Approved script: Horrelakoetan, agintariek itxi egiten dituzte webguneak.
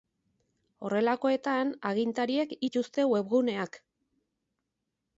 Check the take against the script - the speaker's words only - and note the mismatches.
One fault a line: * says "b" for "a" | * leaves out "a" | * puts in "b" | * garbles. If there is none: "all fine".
* leaves out "itxi egiten"